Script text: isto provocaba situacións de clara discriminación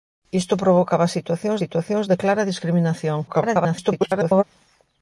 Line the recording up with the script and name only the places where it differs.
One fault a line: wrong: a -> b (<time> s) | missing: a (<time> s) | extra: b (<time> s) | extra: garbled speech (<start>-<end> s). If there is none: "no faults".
extra: situacións (1.6 s)
extra: garbled speech (3.3-4.4 s)